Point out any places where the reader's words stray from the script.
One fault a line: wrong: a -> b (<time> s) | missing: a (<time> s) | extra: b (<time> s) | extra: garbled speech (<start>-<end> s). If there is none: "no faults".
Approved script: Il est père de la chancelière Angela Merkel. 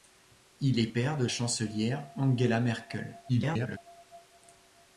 missing: la (1.3 s)
extra: garbled speech (3.3-3.8 s)